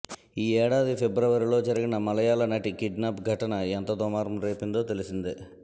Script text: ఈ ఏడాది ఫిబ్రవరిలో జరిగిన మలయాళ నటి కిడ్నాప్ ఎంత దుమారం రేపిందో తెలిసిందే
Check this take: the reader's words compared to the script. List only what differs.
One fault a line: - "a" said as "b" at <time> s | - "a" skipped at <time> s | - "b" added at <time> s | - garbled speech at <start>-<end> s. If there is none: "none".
- "ఘటన" added at 3.3 s